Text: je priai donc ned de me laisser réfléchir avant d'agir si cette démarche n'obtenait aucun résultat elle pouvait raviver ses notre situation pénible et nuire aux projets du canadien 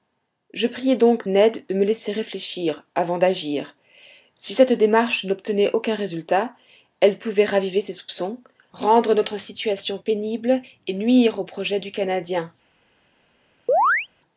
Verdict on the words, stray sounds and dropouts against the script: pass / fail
fail